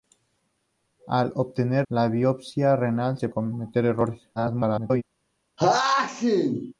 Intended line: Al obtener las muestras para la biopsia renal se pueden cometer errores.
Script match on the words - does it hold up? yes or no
no